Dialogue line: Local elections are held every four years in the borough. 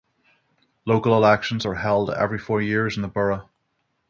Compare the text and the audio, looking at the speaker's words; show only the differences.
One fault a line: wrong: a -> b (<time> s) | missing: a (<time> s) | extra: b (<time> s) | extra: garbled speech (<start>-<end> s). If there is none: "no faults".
no faults